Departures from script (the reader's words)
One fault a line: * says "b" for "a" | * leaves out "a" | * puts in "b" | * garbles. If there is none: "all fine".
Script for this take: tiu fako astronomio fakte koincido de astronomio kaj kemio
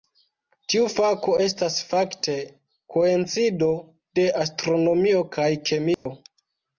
* says "estas" for "astronomio"